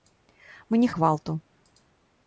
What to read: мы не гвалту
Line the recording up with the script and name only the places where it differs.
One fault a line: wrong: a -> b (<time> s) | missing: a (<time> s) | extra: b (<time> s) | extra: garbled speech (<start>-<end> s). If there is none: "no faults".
no faults